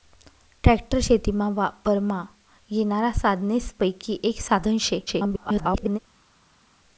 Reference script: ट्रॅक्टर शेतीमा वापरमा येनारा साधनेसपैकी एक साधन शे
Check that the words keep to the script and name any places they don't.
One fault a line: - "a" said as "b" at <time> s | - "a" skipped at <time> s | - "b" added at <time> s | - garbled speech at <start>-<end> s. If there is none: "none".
- garbled speech at 5.1-6.0 s